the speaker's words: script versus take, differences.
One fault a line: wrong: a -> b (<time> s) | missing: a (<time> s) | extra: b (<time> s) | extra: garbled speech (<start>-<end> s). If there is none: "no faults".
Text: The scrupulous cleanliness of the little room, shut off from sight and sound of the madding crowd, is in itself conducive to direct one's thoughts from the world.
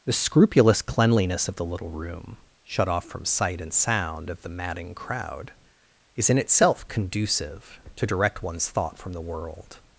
wrong: thoughts -> thought (8.7 s)